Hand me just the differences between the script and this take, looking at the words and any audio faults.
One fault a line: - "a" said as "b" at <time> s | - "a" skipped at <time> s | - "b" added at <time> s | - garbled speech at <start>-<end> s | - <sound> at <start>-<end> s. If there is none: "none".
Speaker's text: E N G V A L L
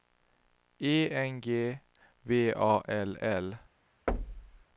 - thud at 4.1-4.6 s